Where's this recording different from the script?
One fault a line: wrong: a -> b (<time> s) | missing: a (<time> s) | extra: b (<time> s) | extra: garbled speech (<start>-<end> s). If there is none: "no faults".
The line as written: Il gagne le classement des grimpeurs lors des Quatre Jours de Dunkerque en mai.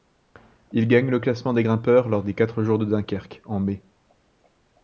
no faults